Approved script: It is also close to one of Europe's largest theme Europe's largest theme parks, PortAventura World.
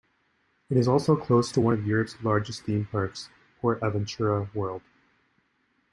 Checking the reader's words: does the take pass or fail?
fail